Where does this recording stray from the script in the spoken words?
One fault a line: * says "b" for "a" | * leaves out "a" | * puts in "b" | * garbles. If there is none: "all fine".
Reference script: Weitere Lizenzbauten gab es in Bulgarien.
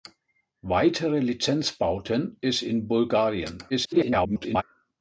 * leaves out "gab"
* garbles